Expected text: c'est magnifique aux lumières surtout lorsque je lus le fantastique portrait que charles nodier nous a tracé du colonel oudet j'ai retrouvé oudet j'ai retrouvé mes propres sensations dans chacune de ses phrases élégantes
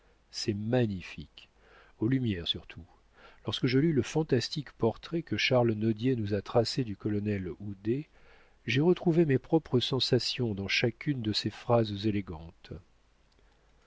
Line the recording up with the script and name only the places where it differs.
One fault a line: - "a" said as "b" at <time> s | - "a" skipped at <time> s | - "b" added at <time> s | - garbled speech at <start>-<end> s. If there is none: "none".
- "oudet j'ai retrouvé" skipped at 9.2 s